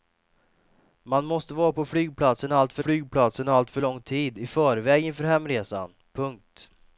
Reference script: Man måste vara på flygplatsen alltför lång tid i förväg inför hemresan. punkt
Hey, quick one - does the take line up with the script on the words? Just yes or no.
no